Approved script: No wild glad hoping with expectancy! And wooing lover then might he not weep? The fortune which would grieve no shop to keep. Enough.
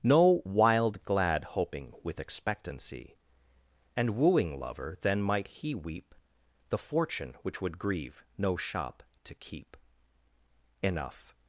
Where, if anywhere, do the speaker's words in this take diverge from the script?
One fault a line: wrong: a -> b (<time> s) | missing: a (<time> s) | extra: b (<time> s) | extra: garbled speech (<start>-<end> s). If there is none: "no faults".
missing: not (5.8 s)